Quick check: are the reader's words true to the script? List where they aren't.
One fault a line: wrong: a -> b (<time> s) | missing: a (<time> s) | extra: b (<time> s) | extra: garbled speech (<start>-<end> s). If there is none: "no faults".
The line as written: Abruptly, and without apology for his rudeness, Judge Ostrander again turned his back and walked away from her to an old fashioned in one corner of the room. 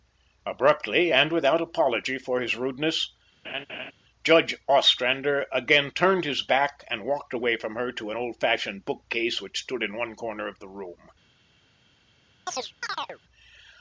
extra: bookcase which stood (8.9 s)